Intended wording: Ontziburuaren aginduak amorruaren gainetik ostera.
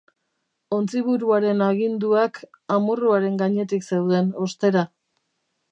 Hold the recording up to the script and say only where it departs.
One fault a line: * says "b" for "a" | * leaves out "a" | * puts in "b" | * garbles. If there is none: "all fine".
* puts in "zeuden"